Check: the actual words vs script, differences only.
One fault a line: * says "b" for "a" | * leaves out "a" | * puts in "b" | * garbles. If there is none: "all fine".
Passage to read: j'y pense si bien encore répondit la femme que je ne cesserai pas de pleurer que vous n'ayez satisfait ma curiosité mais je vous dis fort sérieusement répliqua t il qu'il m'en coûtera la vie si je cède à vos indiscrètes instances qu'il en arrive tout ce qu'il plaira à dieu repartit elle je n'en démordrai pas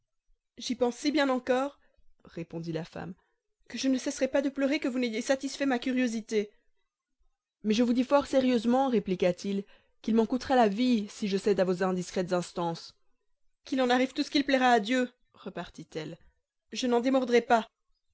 all fine